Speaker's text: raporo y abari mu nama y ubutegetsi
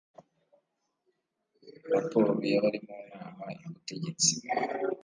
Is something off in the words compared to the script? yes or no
no